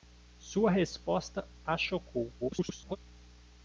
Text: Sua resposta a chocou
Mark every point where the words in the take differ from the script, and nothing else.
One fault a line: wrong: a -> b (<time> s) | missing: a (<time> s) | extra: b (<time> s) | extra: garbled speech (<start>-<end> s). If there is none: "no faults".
extra: garbled speech (2.4-3.0 s)